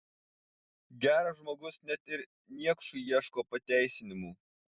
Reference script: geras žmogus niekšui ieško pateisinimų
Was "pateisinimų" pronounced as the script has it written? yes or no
yes